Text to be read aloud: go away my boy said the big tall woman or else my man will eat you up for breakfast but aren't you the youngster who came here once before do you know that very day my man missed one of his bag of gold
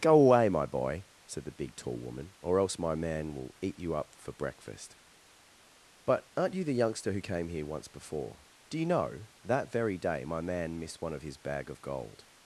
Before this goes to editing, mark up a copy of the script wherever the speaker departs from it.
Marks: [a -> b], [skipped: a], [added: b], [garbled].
go away my boy said the big tall woman or else my man will eat you up for breakfast but aren't you the youngster who came here once before do you know that very day my man missed one of his bag of gold